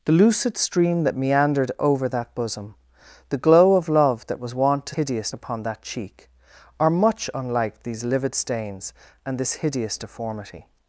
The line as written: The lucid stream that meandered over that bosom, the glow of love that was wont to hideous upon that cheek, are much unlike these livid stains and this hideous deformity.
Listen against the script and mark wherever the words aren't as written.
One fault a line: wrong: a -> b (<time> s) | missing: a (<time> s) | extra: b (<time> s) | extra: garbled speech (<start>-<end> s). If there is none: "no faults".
no faults